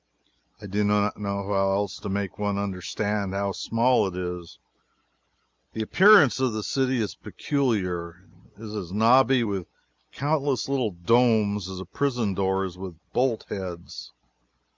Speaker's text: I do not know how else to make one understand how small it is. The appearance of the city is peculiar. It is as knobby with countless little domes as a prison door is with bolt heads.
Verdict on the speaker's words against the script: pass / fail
pass